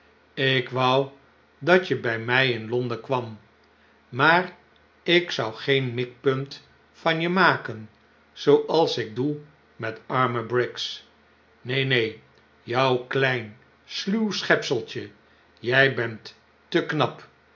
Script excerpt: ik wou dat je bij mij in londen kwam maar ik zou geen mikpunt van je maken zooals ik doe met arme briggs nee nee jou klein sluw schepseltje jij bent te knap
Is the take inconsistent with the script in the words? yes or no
no